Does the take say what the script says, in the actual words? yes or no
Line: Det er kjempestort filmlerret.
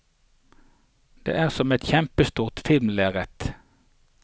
no